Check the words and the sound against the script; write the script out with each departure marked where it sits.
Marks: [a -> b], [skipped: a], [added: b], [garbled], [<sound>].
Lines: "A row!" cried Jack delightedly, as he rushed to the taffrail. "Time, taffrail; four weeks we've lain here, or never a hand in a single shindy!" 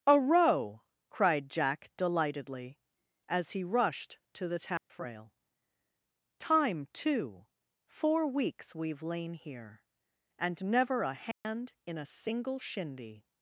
"A row!" cried Jack delightedly, as he rushed to the taffrail. [dropout] "Time, [taffrail; -> too] four weeks we've lain here, [or -> and] never a hand [dropout] in a single shindy!"